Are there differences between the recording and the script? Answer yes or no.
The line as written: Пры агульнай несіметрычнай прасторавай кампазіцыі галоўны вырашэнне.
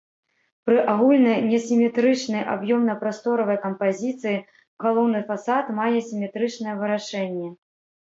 yes